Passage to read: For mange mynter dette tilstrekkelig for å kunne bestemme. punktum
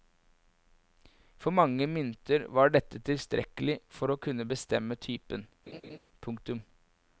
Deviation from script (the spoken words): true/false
true